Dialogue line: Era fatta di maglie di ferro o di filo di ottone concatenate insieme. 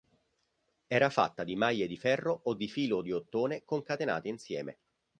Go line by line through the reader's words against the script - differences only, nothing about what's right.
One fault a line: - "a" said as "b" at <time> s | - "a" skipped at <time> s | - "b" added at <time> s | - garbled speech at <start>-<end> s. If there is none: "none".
none